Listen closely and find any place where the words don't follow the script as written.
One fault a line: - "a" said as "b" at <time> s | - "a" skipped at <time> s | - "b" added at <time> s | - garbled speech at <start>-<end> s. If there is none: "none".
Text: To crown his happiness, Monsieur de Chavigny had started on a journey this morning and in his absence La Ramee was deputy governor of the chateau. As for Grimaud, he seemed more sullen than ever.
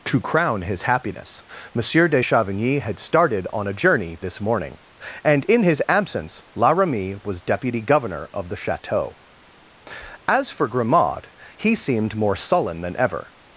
none